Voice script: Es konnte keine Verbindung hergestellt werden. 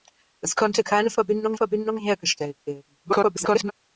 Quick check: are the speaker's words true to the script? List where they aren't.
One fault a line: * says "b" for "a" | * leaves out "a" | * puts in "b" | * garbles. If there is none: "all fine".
* puts in "Verbindung"
* garbles